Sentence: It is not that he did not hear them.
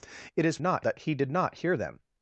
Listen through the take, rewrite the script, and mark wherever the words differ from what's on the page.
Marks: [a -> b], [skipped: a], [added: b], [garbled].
It is not that he did not hear them.